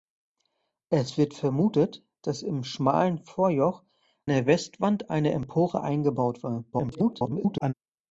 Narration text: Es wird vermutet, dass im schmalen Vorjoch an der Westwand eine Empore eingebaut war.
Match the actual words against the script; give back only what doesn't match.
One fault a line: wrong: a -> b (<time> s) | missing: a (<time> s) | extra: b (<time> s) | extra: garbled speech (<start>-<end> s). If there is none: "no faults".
missing: an (3.8 s)
extra: garbled speech (6.7-7.7 s)